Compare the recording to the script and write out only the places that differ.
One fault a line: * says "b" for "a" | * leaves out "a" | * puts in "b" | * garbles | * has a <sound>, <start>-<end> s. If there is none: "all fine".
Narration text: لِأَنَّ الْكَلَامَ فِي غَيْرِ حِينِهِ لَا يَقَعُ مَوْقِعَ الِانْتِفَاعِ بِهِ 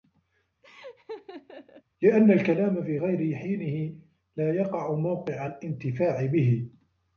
* has a laugh, 0.6-1.8 s